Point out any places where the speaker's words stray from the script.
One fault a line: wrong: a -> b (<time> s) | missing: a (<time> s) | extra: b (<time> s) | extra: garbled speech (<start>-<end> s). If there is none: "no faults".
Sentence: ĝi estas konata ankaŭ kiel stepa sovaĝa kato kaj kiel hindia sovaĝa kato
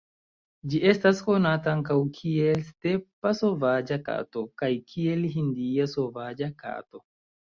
no faults